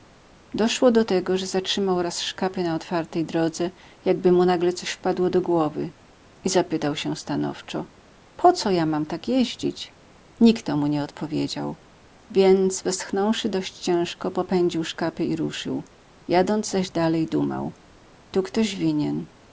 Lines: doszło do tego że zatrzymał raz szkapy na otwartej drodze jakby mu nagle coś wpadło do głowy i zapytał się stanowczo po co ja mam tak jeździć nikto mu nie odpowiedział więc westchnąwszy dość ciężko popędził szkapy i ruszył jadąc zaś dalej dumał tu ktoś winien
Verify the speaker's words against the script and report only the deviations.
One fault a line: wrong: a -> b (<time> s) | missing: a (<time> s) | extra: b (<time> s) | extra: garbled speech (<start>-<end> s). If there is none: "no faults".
no faults